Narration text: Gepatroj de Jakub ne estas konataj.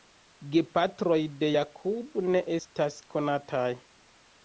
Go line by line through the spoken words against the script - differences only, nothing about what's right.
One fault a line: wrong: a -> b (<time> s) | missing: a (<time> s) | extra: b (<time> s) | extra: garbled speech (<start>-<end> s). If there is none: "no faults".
no faults